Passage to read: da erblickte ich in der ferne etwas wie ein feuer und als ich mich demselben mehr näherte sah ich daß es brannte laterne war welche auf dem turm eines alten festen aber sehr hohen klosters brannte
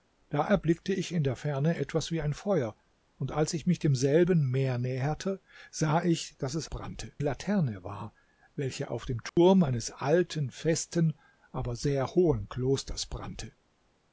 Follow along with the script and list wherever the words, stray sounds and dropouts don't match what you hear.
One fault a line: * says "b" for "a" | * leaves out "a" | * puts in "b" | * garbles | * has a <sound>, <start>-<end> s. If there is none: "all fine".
* has a dropout, 9.3-9.4 s